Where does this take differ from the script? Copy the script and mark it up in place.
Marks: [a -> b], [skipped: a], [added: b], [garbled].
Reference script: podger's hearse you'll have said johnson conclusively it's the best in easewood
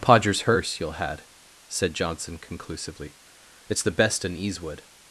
podger's hearse you'll [have -> had] said johnson conclusively it's the best in easewood